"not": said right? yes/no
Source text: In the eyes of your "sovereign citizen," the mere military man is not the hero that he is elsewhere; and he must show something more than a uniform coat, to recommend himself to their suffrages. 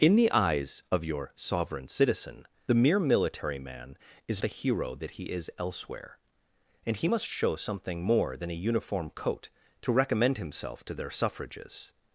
no